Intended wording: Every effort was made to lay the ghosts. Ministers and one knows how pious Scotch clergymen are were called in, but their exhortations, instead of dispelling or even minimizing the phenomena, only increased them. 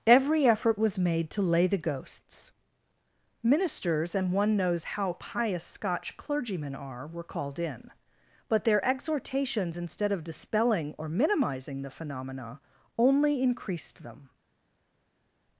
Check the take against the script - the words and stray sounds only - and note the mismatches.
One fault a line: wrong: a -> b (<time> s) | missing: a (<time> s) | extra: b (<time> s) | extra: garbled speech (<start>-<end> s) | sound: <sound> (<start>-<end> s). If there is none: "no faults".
missing: even (11.1 s)